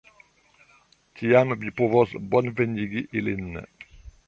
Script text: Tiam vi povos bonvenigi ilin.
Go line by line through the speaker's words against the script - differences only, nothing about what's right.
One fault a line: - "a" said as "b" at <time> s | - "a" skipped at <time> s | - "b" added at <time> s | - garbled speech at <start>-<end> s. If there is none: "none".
none